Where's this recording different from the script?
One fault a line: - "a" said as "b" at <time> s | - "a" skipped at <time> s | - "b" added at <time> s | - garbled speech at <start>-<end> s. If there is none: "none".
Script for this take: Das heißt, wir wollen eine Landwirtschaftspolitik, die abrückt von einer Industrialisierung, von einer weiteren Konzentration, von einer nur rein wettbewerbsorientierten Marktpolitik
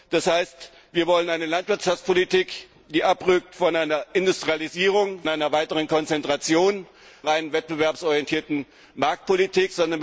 - "von" skipped at 5.2 s
- "von einer nur" skipped at 6.9 s